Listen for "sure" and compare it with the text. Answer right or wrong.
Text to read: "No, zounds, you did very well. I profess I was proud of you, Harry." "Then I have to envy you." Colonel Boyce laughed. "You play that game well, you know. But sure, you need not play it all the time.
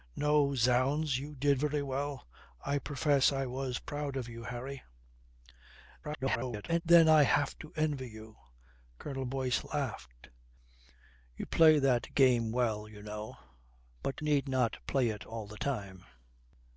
wrong